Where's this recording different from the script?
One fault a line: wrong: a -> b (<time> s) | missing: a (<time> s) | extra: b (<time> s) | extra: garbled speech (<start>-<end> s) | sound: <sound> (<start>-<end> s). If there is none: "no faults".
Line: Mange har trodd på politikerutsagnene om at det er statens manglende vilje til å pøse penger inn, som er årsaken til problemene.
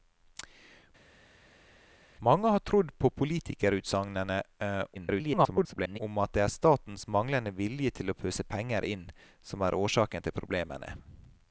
extra: garbled speech (4.9-6.0 s)